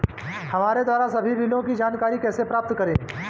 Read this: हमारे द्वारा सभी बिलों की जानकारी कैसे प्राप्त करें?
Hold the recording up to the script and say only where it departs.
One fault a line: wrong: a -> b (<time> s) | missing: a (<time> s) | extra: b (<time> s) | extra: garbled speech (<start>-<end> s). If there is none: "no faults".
no faults